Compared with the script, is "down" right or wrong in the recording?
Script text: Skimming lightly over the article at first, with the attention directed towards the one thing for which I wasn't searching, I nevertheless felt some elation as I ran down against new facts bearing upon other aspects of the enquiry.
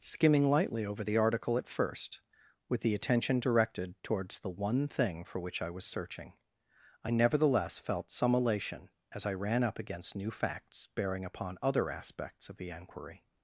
wrong